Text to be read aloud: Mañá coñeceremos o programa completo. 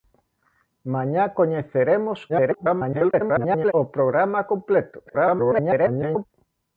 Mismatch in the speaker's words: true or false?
true